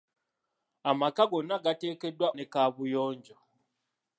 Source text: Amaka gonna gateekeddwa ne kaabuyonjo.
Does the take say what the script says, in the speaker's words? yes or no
yes